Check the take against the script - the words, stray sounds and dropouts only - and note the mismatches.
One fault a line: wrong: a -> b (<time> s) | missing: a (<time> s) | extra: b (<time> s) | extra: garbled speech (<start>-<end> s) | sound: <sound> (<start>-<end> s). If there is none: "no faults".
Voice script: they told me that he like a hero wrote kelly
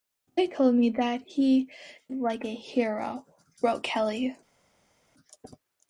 no faults